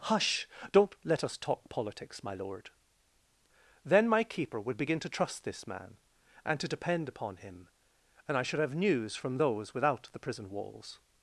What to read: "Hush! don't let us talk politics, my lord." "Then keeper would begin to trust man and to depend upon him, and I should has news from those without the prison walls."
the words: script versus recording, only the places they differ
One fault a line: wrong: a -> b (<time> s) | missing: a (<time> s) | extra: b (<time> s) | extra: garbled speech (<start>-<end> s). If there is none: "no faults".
extra: my (4.1 s)
extra: this (5.4 s)
wrong: has -> have (8.6 s)